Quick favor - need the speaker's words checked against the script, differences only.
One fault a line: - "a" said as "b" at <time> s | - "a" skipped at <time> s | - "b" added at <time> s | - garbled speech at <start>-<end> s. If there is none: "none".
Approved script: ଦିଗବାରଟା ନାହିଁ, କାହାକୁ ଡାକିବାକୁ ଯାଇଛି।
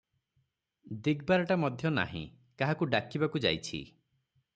- "ମଧ୍ୟ" added at 1.6 s